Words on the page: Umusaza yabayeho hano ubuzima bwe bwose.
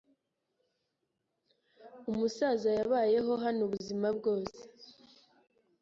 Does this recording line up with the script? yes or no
no